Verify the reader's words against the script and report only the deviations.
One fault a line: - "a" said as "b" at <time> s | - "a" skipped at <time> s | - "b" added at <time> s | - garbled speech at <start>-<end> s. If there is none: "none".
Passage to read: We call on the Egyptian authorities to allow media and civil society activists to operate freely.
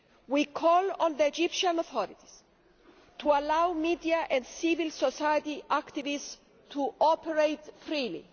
none